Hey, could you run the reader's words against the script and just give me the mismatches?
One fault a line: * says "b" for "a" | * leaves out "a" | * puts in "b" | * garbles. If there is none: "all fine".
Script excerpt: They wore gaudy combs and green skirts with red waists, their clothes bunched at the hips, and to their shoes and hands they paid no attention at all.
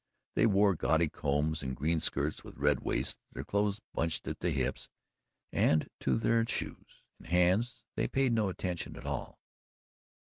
all fine